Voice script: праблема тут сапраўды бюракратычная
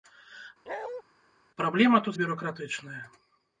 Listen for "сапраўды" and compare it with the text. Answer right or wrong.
wrong